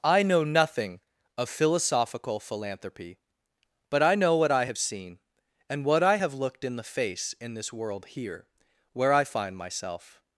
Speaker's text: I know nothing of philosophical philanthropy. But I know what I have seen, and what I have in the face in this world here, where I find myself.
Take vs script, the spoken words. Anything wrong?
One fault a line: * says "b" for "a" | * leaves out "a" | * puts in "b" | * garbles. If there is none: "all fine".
* puts in "looked"